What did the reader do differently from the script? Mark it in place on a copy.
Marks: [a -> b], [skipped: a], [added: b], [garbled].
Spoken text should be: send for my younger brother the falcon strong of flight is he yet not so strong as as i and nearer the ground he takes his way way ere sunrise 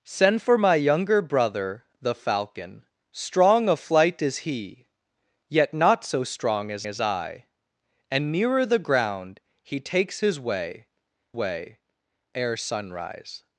send for my younger brother the falcon strong of flight is he yet not so strong as as i and nearer the ground he takes his way way ere sunrise